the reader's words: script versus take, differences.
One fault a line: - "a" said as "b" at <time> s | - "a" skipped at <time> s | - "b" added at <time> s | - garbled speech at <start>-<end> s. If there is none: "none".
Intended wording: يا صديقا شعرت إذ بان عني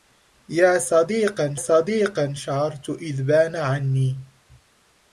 - "صديقا" added at 1.6 s